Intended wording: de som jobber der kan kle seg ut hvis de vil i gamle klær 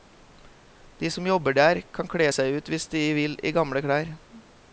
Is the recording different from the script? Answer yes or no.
no